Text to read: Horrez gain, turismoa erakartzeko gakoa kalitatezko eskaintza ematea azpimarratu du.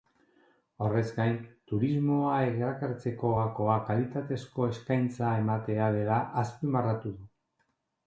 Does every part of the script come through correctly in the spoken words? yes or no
no